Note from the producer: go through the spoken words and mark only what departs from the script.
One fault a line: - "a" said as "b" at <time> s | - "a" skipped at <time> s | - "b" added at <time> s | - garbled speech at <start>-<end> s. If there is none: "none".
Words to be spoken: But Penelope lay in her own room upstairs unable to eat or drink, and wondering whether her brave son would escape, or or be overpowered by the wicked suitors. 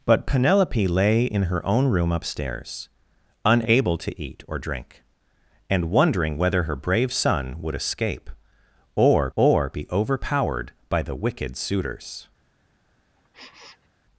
none